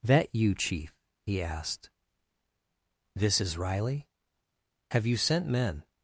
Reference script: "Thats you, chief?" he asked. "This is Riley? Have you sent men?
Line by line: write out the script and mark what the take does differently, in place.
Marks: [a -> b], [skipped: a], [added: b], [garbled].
["Thats -> That] you, chief?" he asked. "This is Riley? Have you sent men?